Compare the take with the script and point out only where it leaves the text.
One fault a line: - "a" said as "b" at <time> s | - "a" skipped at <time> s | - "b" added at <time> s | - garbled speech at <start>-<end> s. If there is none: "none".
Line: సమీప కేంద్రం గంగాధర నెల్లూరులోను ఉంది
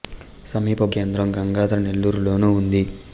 none